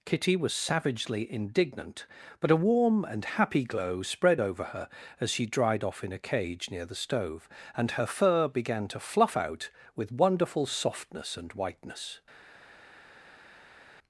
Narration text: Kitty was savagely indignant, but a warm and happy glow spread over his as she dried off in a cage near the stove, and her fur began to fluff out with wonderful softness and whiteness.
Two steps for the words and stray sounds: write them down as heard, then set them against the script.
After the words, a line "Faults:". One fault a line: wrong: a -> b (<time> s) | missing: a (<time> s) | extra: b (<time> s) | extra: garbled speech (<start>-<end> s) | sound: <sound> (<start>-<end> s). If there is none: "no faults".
Kitty was savagely indignant, but a warm and happy glow spread over her as she dried off in a cage near the stove, and her fur began to fluff out with wonderful softness and whiteness.
Faults:
wrong: his -> her (4.6 s)